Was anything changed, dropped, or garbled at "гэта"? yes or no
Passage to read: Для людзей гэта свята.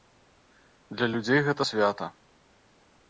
no